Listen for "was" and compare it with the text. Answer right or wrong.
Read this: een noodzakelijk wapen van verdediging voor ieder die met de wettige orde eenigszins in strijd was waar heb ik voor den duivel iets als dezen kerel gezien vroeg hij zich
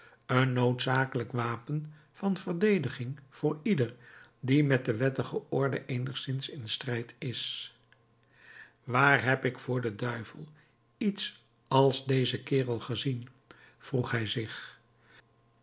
wrong